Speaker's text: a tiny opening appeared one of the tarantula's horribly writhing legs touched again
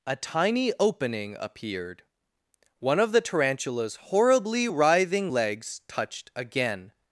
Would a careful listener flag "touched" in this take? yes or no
no